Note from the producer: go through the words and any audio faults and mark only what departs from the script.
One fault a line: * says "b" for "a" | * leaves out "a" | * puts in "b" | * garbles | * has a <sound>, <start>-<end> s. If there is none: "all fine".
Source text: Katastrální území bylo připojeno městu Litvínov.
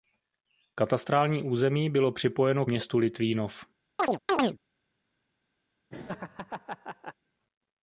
* has a chirp, 4.0-4.6 s
* has a laugh, 5.9-7.1 s